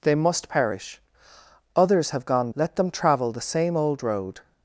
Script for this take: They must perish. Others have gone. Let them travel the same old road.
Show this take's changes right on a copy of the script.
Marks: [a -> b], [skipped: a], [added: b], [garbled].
They must perish. Others have gone. Let them travel the same old road.